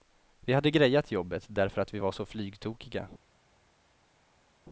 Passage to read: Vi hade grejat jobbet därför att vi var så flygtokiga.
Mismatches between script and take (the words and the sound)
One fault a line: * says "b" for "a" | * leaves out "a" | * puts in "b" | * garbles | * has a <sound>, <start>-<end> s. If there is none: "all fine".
all fine